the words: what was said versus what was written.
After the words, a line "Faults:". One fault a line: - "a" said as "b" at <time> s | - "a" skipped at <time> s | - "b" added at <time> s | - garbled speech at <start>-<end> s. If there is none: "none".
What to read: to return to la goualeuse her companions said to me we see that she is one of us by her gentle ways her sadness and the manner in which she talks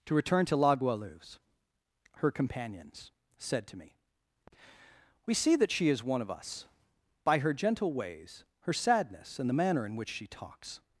to return to la goualeuse her companions said to me we see that she is one of us by her gentle ways her sadness and the manner in which she talks
Faults:
none